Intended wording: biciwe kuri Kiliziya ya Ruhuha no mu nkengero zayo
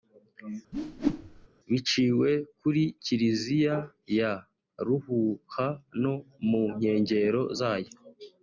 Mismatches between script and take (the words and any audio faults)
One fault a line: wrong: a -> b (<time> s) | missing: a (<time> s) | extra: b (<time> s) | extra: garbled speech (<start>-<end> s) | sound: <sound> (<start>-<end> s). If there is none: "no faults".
sound: whoosh (0.7-1.5 s)